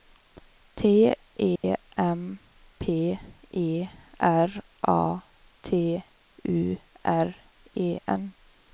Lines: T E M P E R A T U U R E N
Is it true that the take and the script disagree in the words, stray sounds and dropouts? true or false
true